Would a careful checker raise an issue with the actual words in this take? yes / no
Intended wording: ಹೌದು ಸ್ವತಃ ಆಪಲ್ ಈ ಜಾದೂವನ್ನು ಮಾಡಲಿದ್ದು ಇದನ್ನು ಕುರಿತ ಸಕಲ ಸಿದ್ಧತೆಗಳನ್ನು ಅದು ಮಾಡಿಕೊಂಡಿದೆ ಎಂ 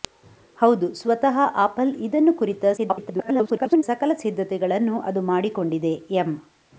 yes